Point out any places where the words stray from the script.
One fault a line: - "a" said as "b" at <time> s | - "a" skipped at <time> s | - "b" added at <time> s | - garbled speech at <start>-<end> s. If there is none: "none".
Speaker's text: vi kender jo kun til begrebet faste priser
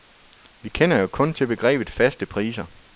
none